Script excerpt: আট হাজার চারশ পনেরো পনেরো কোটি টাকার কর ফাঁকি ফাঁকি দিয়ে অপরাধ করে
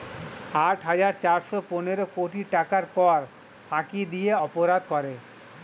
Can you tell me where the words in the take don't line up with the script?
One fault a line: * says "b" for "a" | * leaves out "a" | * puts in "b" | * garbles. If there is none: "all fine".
* leaves out "পনেরো"
* leaves out "ফাঁকি"